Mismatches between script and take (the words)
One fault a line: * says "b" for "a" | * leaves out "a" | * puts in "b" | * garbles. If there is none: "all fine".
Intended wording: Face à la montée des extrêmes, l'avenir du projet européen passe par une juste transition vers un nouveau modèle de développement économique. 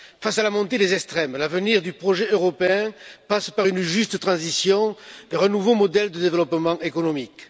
all fine